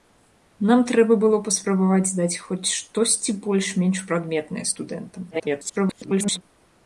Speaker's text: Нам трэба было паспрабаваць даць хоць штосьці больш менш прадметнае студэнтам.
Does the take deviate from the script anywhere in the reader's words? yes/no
yes